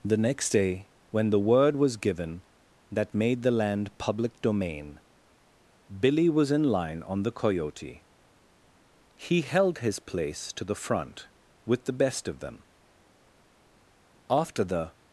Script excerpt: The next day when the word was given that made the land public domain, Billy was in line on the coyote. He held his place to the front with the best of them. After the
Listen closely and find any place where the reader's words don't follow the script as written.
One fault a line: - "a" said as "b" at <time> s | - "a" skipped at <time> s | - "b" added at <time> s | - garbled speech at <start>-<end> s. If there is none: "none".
none